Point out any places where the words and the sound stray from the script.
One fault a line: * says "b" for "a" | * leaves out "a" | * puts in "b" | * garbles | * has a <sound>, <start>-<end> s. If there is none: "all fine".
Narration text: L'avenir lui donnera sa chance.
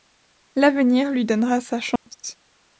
* has a dropout, 2.0-2.1 s